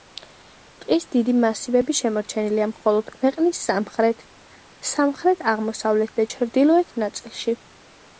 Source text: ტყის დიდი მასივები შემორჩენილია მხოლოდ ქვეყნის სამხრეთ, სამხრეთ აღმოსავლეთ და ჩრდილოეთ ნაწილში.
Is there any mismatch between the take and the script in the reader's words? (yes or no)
no